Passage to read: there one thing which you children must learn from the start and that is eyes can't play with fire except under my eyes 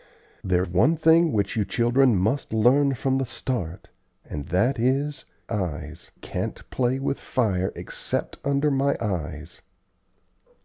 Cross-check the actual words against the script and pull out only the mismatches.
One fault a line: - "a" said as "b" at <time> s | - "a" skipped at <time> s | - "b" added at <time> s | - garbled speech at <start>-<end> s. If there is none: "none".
none